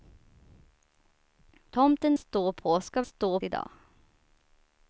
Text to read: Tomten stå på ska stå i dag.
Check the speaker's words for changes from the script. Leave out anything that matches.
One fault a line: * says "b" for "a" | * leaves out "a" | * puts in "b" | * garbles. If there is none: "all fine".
all fine